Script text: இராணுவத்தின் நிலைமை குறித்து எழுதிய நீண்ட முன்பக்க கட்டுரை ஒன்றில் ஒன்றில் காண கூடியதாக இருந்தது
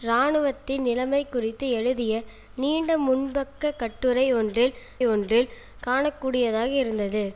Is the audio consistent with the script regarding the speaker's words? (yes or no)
yes